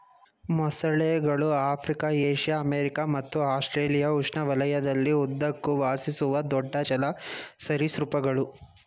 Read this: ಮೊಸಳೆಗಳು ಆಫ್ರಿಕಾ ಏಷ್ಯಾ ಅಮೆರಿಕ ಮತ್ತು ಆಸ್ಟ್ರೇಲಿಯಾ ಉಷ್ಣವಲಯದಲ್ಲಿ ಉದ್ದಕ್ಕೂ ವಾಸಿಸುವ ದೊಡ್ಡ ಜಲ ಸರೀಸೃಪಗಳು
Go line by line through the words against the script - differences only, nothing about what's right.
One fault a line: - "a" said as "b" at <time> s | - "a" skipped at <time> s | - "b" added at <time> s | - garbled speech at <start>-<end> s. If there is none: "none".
none